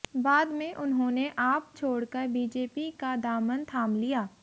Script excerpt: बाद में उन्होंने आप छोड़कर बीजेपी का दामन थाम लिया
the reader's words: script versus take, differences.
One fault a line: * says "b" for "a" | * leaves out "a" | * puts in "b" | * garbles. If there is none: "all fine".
all fine